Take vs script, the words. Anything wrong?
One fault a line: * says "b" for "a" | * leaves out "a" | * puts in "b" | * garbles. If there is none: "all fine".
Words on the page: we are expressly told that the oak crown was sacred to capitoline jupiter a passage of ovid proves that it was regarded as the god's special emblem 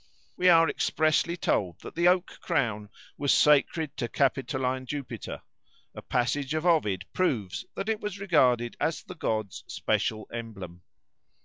all fine